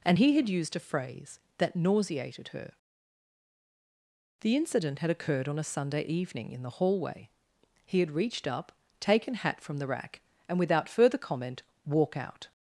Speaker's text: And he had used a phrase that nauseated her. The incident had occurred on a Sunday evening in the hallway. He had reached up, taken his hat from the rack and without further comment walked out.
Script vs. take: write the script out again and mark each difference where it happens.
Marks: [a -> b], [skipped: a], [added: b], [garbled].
And he had used a phrase that nauseated her. The incident had occurred on a Sunday evening in the hallway. He had reached up, taken [skipped: his] hat from the rack and without further comment [walked -> walk] out.